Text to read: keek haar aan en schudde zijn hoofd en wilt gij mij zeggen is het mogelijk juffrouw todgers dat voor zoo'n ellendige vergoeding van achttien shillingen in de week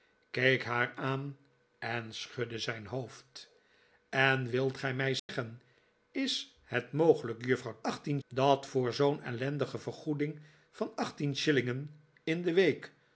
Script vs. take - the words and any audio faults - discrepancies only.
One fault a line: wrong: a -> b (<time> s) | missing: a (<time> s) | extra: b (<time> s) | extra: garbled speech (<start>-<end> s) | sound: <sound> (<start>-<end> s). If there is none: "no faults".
sound: dropout (5.2-5.3 s)
wrong: todgers -> achttien (7.8 s)